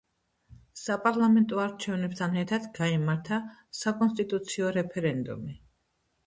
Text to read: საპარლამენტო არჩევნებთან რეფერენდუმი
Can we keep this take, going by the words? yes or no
no